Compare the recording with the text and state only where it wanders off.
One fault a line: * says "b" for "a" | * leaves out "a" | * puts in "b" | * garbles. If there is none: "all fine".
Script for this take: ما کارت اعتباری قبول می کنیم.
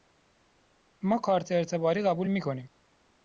all fine